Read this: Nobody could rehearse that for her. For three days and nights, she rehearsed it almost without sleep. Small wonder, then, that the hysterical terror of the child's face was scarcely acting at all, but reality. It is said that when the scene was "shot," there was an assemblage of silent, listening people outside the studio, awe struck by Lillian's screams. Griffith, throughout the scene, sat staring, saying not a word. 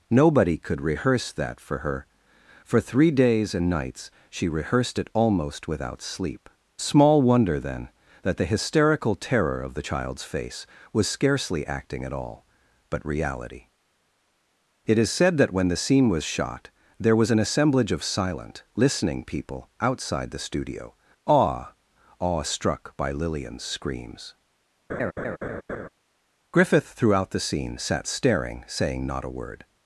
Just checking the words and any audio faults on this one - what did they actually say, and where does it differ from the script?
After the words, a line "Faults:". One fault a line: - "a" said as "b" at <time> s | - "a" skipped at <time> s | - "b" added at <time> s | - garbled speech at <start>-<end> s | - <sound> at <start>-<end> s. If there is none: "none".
Nobody could rehearse that for her. For three days and nights, she rehearsed it almost without sleep. Small wonder, then, that the hysterical terror of the child's face was scarcely acting at all, but reality. It is said that when the scene was "shot," there was an assemblage of silent, listening people outside the studio, awe awe struck by Lillian's screams. Griffith, throughout the scene, sat staring, saying not a word.
Faults:
- "awe" added at 22.2 s
- laugh at 24.9-25.9 s